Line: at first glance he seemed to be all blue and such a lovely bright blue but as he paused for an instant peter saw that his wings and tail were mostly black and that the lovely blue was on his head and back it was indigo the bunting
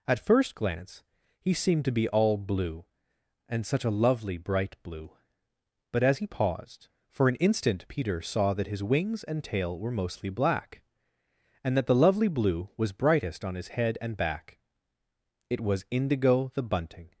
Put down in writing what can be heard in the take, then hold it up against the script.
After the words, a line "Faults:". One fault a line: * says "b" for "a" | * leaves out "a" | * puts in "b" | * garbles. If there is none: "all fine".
at first glance he seemed to be all blue and such a lovely bright blue but as he paused for an instant peter saw that his wings and tail were mostly black and that the lovely blue was brightest on his head and back it was indigo the bunting
Faults:
* puts in "brightest"